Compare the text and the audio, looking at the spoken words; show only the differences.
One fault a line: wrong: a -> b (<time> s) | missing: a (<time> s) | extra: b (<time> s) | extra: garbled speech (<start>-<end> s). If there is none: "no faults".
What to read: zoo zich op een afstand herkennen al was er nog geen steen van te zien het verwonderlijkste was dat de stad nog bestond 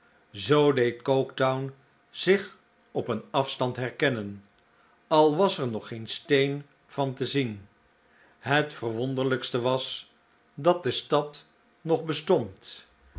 extra: deed coketown (0.7 s)